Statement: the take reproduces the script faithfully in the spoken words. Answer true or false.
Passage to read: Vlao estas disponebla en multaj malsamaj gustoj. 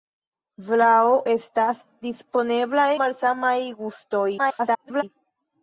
false